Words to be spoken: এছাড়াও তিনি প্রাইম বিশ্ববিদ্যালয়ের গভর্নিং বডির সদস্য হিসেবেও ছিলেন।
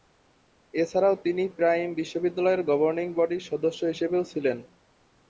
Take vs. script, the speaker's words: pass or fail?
pass